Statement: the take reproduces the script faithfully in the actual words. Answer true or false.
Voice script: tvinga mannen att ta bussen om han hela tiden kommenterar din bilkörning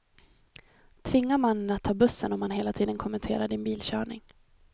true